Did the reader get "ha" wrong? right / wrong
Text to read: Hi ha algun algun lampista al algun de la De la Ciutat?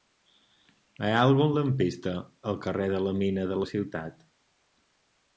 right